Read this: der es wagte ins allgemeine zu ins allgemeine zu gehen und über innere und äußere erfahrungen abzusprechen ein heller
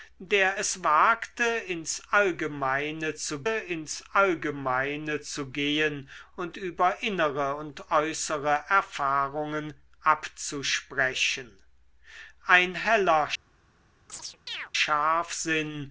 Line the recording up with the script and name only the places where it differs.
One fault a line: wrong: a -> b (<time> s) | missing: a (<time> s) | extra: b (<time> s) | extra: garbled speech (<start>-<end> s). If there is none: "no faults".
no faults